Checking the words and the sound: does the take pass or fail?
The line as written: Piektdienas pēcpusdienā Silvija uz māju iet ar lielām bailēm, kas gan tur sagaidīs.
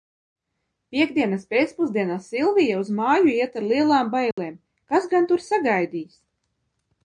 fail